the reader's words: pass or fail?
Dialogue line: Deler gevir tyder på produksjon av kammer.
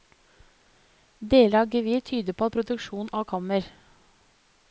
fail